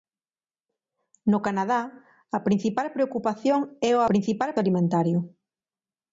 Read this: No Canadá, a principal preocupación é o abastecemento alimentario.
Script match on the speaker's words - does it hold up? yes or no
no